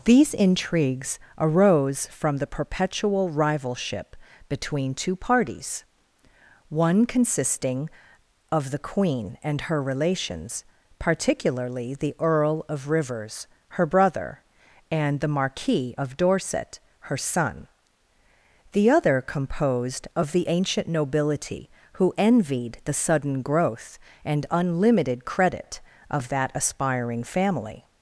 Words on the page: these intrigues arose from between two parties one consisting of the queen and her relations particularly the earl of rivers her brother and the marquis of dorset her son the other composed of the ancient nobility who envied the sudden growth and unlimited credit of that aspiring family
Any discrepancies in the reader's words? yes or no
yes